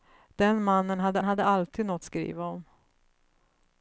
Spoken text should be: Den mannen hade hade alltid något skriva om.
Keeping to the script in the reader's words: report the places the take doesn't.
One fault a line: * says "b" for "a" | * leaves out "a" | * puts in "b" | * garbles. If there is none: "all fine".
all fine